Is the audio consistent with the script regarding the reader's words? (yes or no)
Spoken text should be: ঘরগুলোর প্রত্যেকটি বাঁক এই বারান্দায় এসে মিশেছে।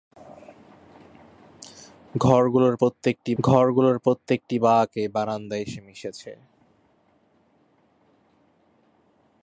no